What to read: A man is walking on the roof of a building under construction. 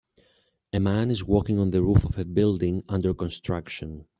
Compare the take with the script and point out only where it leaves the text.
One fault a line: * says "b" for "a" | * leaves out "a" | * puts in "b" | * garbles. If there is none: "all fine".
all fine